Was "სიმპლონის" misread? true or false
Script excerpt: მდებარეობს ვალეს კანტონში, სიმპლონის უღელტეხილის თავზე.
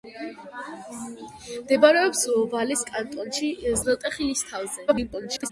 true